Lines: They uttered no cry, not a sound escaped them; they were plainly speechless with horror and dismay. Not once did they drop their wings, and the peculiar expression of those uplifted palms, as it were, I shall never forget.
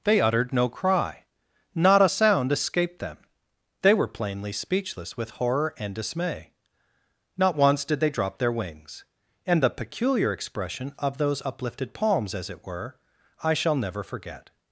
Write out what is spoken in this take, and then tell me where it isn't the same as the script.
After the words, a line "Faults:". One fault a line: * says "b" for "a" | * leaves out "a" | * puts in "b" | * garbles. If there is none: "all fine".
They uttered no cry, not a sound escaped them; they were plainly speechless with horror and dismay. Not once did they drop their wings, and the peculiar expression of those uplifted palms, as it were, I shall never forget.
Faults:
all fine